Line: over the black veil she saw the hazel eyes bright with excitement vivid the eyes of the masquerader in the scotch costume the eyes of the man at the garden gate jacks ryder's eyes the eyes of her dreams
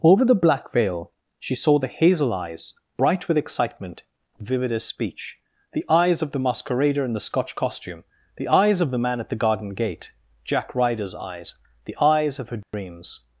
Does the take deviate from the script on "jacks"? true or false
true